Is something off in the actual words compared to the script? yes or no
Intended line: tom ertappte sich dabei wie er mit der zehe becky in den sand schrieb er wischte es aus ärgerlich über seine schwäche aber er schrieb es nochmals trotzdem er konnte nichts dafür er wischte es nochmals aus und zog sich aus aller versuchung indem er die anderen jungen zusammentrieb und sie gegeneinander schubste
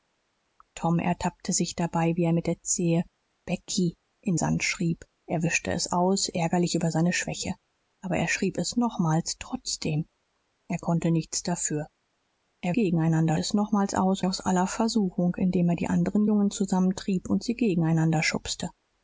yes